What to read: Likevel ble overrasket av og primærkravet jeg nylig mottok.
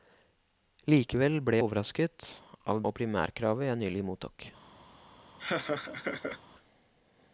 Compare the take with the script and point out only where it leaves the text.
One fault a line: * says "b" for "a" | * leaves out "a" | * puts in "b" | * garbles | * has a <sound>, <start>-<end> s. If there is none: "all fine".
* has a laugh, 5.4-6.4 s